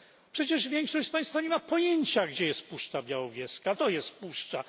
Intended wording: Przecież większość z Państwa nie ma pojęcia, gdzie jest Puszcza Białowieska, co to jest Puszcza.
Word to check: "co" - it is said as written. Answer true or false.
false